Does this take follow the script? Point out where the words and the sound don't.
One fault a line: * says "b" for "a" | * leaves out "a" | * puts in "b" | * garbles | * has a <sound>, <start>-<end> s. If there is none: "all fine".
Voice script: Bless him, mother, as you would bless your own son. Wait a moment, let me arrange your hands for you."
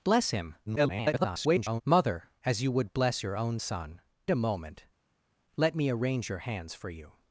* garbles
* leaves out "Wait"